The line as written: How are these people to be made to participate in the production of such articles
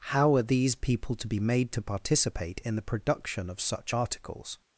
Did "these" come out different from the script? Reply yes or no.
no